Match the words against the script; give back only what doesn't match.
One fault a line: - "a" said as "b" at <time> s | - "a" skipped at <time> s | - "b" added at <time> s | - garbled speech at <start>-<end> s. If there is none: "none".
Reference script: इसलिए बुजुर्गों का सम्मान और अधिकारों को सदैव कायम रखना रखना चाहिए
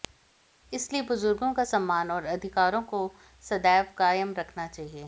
- "रखना" skipped at 4.7 s